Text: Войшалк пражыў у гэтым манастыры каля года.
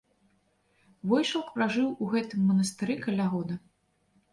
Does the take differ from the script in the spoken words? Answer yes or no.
no